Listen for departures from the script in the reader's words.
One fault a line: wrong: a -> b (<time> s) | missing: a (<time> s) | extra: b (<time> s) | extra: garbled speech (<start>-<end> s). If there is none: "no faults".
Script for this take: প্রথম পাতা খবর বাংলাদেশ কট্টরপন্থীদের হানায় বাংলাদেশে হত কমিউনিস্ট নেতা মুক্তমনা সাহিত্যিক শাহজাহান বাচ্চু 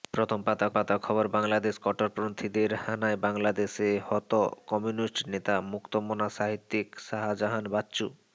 extra: পাতা (0.7 s)